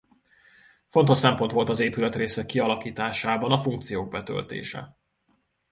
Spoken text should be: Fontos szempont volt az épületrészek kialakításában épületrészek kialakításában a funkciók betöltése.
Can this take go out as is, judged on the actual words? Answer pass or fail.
fail